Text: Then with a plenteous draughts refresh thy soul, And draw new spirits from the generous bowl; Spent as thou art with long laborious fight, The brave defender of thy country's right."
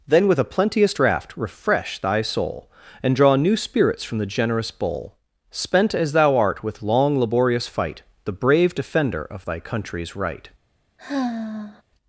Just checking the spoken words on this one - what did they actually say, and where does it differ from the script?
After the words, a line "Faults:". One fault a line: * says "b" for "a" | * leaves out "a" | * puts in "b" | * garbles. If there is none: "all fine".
Then with a plenteous draught refresh thy soul, And draw new spirits from the generous bowl; Spent as thou art with long laborious fight, The brave defender of thy country's right."
Faults:
* says "draught" for "draughts"